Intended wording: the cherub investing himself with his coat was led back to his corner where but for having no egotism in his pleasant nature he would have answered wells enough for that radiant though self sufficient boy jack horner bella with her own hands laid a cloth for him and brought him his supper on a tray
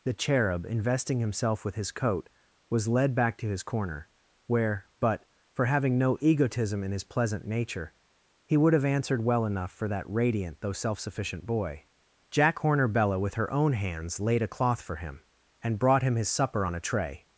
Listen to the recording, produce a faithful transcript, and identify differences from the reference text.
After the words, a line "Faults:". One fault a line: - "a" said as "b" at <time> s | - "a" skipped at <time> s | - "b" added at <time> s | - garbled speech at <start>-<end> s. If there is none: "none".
the cherub investing himself with his coat was led back to his corner where but for having no egotism in his pleasant nature he would have answered well enough for that radiant though self sufficient boy jack horner bella with her own hands laid a cloth for him and brought him his supper on a tray
Faults:
- "wells" said as "well" at 9.2 s